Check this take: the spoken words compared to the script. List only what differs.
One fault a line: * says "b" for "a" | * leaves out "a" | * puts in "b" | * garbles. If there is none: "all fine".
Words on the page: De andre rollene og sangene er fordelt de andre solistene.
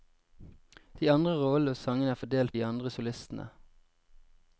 all fine